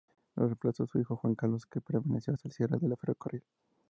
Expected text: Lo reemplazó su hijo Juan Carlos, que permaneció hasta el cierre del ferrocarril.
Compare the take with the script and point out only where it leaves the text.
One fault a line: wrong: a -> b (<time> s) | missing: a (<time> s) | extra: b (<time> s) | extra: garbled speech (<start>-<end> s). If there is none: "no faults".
no faults